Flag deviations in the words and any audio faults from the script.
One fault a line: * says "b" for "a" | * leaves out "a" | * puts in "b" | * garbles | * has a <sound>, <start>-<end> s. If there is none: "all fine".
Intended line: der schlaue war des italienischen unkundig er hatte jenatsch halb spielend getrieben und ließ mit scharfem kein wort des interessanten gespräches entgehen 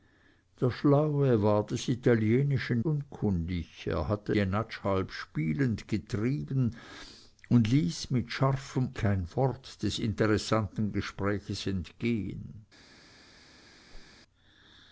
* has a whoosh, 13.9-14.1 s